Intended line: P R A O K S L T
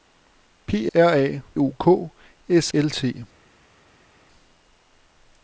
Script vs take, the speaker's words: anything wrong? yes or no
no